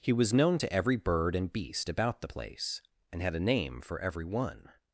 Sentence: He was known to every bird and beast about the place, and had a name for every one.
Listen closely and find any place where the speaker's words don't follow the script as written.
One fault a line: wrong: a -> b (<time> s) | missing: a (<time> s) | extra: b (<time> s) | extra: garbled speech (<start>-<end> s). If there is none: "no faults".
no faults